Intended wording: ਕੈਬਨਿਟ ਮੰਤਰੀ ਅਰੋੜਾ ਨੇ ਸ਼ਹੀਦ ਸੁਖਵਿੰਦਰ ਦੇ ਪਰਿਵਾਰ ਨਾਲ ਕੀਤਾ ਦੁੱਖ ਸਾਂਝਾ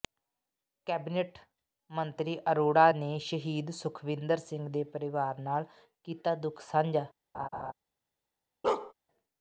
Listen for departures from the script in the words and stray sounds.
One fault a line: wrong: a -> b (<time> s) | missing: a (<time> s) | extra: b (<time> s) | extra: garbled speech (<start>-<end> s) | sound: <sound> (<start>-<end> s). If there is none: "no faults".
extra: ਸਿੰਘ (4.4 s)
sound: laugh (7.3-7.7 s)
sound: bark (8.6-8.9 s)